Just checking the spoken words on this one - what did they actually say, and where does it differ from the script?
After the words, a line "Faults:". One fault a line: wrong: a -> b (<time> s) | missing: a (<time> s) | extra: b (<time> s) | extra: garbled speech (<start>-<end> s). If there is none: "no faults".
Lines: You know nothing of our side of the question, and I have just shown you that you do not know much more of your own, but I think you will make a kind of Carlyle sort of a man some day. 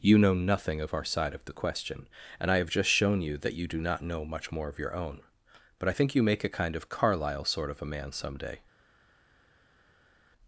You know nothing of our side of the question, and I have just shown you that you do not know much more of your own, but I think you make a kind of Carlyle sort of a man some day.
Faults:
missing: will (6.2 s)